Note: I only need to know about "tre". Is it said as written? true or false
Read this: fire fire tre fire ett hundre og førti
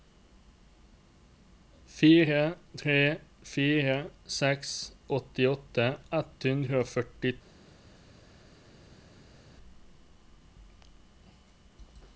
false